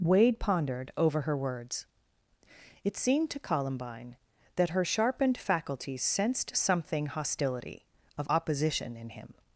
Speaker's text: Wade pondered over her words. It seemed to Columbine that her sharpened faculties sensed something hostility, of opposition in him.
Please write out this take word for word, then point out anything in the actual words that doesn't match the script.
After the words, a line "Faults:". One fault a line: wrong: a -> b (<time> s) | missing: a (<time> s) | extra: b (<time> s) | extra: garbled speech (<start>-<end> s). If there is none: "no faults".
Wade pondered over her words. It seemed to Columbine that her sharpened faculties sensed something hostility, of opposition in him.
Faults:
no faults